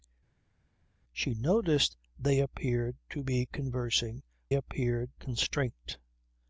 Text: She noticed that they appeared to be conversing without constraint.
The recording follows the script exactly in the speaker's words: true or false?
false